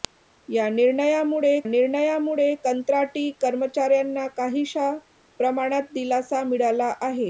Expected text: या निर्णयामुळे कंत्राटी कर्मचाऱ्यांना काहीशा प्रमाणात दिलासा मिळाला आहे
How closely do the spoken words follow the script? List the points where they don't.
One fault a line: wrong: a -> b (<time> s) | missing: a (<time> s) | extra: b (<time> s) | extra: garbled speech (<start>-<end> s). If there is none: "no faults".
extra: निर्णयामुळे (1.6 s)